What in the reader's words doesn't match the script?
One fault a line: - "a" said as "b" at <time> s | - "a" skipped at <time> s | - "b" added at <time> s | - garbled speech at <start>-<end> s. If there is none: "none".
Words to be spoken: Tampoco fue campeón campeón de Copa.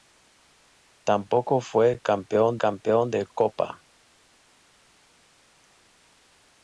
none